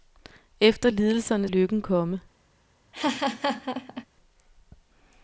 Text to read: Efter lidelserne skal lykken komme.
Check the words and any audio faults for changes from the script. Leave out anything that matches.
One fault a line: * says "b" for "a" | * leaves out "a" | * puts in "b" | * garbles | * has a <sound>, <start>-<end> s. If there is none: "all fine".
* leaves out "skal"
* has a laugh, 2.9-4.1 s